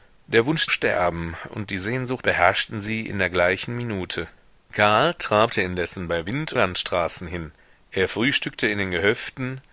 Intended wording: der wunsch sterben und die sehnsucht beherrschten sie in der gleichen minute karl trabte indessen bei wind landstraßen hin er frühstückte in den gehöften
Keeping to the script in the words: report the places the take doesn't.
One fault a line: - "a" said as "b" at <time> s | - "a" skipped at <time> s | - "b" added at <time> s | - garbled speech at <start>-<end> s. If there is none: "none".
none